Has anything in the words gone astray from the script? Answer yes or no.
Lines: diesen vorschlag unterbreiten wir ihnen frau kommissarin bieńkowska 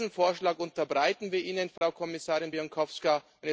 no